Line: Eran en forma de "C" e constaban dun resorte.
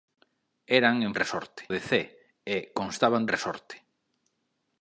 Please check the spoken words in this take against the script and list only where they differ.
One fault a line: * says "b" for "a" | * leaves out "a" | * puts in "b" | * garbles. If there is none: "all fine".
* says "resorte" for "forma"
* leaves out "dun"